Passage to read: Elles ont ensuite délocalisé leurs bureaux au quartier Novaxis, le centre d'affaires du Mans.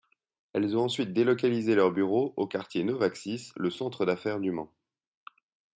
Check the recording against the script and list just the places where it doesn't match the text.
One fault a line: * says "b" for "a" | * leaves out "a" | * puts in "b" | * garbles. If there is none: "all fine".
all fine